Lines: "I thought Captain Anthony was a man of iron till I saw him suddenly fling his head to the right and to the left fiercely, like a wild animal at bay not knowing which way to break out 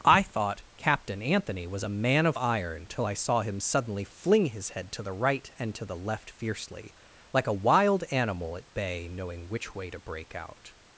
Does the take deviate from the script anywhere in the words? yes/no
yes